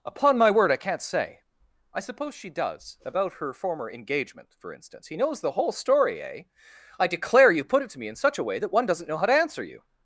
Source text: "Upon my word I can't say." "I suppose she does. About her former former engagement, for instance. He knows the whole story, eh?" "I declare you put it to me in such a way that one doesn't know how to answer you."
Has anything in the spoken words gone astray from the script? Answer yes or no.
yes